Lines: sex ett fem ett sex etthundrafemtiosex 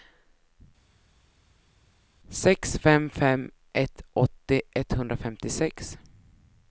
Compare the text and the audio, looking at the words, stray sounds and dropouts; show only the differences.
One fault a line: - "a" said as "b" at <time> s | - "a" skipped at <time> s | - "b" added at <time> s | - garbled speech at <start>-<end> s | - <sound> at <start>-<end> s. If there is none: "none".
- "ett" said as "fem" at 2.8 s
- "sex" said as "åttio" at 4.1 s